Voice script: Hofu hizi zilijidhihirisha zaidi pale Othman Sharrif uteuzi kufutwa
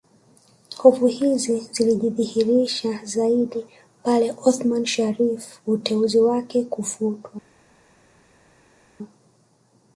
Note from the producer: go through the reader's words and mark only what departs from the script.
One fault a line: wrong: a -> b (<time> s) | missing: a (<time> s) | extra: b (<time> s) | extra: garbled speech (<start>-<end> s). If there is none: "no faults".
extra: wake (6.2 s)